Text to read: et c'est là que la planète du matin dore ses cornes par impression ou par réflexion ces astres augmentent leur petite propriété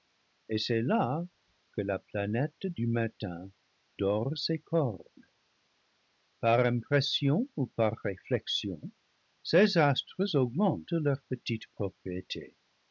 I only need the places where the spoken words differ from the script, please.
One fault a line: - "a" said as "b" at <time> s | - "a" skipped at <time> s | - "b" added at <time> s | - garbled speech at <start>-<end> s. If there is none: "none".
none